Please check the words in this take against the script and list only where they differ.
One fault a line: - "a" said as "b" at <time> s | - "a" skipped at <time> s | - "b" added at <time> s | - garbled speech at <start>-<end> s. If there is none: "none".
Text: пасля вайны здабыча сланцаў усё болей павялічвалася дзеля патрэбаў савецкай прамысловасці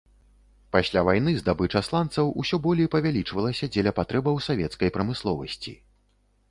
none